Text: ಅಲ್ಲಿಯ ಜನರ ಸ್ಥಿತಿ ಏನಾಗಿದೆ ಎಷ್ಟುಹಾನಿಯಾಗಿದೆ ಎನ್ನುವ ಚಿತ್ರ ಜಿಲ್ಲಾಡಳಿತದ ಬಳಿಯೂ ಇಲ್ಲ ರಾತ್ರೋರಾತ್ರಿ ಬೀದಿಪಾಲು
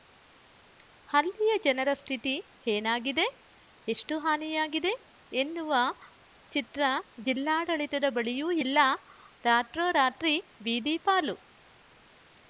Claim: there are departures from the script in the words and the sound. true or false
false